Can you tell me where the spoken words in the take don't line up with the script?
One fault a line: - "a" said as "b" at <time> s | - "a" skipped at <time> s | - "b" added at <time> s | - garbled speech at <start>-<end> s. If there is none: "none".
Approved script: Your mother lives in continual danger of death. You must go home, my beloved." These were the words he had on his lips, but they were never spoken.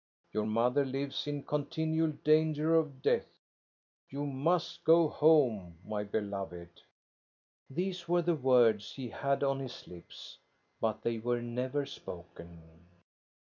none